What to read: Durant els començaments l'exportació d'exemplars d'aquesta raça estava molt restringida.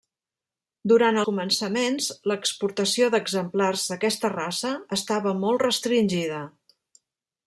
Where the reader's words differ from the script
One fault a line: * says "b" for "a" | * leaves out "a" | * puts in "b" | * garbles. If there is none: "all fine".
* leaves out "els"